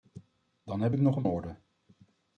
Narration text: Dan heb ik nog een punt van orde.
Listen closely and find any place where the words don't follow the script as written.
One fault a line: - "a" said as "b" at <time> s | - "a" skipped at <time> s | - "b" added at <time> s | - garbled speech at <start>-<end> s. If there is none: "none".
- "punt van" skipped at 1.3 s